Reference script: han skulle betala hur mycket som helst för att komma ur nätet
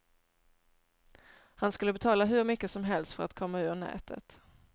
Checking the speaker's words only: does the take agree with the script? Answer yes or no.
yes